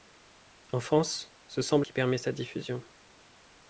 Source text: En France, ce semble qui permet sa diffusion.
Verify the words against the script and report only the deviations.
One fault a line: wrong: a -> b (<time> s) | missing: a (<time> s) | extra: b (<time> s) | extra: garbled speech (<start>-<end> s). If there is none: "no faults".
no faults